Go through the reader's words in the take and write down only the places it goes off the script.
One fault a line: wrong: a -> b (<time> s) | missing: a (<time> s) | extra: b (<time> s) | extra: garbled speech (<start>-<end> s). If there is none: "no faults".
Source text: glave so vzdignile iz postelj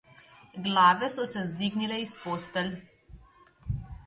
extra: se (1.2 s)